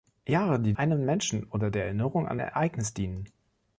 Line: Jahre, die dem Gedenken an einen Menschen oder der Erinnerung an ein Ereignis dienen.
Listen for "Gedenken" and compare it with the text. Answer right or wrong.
wrong